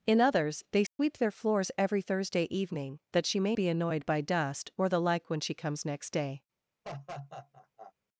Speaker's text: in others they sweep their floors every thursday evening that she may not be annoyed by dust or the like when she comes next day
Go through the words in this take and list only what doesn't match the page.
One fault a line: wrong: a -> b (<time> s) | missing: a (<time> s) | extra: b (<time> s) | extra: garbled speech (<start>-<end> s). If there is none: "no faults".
missing: not (3.6 s)